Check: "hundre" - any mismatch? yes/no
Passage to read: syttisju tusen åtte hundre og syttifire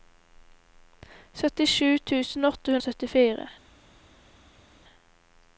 yes